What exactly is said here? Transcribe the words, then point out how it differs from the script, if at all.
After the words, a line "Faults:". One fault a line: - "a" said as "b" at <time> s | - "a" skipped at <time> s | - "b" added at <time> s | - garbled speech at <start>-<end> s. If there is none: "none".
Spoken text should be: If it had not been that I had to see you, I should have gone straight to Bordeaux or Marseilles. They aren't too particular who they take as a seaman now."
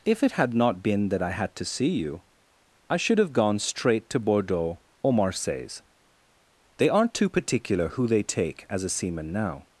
If it had not been that I had to see you, I should have gone straight to Bordeaux or Marseilles. They aren't too particular who they take as a seaman now."
Faults:
none